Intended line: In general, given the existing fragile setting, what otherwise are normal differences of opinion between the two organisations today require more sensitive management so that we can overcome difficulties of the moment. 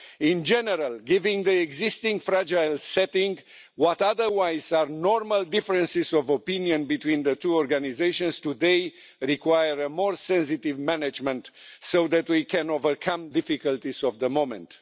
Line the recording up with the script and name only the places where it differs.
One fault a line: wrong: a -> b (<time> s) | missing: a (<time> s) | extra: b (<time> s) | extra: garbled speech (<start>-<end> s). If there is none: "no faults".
no faults